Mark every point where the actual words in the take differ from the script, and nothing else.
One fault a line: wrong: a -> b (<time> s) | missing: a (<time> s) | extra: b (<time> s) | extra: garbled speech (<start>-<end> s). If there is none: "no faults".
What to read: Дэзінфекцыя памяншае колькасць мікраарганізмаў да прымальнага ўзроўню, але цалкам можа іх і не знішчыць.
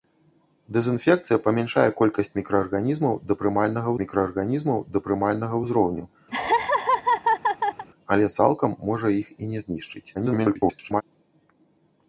extra: мікраарганізмаў да прымальнага (4.0 s)
extra: garbled speech (10.1-11.0 s)